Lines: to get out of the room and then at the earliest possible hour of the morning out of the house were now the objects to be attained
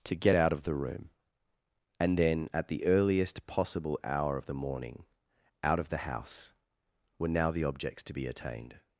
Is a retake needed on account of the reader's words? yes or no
no